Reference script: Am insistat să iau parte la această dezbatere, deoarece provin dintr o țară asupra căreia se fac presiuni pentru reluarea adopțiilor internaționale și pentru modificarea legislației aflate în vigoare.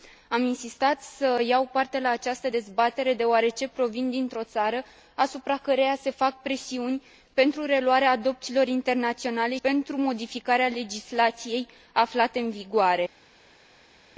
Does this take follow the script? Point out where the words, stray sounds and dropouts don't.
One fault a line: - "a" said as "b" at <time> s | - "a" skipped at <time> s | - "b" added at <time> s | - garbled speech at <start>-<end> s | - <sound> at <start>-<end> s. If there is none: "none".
- "și" skipped at 9.6 s